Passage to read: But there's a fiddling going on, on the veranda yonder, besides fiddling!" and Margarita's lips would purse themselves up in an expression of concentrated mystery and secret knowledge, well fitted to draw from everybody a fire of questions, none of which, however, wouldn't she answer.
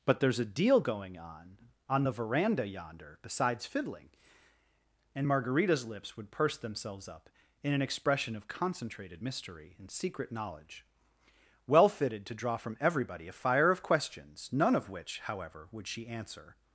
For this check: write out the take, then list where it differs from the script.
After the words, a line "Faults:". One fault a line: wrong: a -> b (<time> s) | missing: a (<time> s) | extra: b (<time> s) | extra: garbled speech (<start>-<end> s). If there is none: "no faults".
But there's a deal going on, on the veranda yonder, besides fiddling!" and Margarita's lips would purse themselves up in an expression of concentrated mystery and secret knowledge, well fitted to draw from everybody a fire of questions, none of which, however, would she answer.
Faults:
wrong: fiddling -> deal (0.5 s)
wrong: wouldn't -> would (15.7 s)